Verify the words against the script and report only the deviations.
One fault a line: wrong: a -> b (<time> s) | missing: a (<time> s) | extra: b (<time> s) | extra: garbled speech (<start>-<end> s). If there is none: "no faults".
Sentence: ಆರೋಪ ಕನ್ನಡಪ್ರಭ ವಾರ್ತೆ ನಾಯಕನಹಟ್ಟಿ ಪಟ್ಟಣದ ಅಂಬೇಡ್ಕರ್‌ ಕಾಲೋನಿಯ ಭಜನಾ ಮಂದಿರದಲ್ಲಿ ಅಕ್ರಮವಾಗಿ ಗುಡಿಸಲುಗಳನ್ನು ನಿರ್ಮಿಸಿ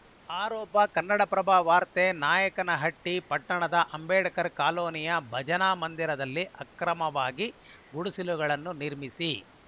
no faults